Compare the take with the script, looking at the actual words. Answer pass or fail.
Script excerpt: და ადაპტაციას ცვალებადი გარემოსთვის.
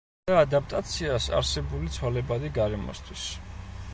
fail